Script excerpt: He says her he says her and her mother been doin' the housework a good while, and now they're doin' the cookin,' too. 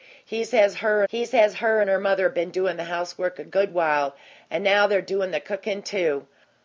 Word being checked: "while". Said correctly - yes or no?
yes